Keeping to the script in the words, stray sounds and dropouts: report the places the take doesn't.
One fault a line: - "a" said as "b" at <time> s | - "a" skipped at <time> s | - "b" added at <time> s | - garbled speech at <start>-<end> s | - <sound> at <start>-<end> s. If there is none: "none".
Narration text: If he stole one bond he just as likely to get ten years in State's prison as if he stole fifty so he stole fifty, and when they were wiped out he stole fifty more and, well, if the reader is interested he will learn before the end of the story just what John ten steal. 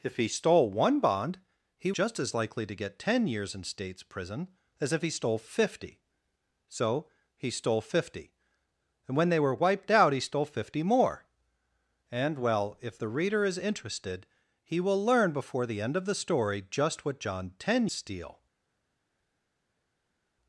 none